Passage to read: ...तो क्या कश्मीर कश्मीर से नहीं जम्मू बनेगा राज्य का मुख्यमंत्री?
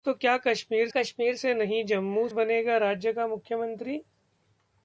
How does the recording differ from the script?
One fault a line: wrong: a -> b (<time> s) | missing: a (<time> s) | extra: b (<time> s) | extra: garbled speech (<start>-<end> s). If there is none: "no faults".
no faults